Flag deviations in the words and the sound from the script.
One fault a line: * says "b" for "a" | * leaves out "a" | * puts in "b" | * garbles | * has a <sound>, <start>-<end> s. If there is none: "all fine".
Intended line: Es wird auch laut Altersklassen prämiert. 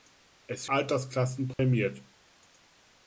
* leaves out "wird auch laut"
* has a dropout, 1.5-1.6 s